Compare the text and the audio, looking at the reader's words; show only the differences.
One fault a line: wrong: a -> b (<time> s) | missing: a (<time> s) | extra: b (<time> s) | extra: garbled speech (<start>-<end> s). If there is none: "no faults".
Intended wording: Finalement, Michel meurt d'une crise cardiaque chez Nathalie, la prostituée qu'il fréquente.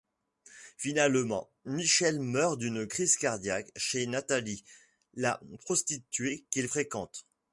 no faults